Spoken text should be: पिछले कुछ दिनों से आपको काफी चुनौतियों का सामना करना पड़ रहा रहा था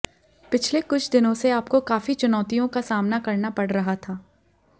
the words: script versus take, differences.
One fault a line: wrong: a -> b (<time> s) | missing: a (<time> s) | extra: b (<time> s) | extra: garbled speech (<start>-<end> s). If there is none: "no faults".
missing: रहा (4.0 s)